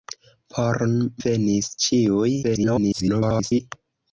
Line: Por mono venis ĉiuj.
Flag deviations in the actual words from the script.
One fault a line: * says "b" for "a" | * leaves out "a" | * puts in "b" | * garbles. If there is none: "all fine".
* leaves out "mono"
* garbles